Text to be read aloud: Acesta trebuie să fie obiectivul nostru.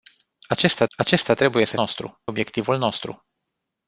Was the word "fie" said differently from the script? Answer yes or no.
yes